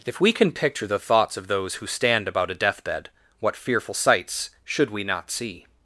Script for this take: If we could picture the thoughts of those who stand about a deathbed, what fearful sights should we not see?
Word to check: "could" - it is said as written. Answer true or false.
false